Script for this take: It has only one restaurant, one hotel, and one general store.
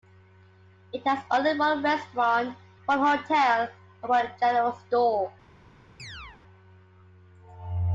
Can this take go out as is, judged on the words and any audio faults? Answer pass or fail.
fail